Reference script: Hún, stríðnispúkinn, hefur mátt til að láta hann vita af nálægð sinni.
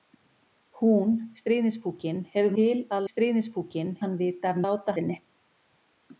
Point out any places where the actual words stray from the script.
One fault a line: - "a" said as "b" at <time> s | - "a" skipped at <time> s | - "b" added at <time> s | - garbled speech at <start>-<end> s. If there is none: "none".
- "mátt" skipped at 2.6 s
- "láta" said as "stríðnispúkinn" at 3.1 s
- "nálægð" said as "láta" at 4.7 s